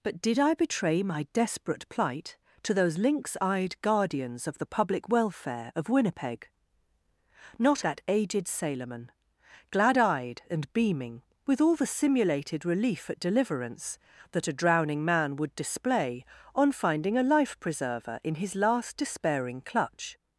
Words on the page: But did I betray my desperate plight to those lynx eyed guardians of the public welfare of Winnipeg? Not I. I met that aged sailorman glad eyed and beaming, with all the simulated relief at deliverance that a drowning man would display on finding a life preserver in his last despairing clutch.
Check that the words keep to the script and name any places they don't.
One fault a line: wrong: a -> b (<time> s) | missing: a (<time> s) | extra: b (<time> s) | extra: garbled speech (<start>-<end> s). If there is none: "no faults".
missing: I I met (7.8 s)